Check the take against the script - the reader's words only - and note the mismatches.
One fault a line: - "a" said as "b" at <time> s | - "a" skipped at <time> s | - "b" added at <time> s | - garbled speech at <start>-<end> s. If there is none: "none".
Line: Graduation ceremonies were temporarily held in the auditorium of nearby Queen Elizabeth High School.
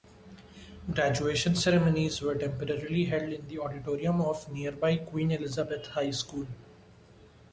none